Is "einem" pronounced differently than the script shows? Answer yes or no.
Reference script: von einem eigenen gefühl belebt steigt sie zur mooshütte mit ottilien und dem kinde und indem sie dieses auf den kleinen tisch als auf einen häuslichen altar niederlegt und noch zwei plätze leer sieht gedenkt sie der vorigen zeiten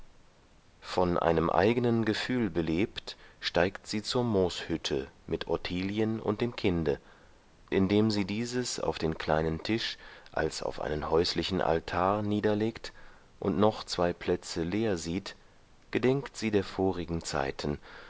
no